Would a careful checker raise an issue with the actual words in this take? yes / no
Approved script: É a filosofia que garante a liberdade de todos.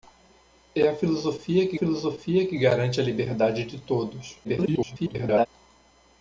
yes